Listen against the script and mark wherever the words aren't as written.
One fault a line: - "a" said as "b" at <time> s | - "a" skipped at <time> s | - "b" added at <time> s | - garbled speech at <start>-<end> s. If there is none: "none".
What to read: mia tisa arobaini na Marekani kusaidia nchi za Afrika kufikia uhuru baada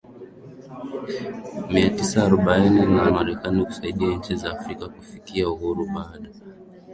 none